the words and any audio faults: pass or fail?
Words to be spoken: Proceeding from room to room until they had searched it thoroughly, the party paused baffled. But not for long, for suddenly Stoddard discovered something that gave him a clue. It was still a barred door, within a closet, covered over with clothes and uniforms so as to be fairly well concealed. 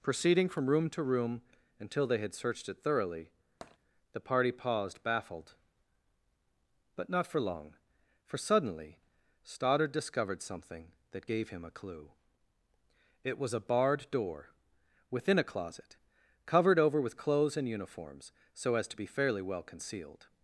fail